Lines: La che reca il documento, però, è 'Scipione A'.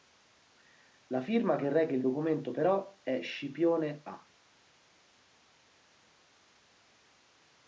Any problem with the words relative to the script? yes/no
yes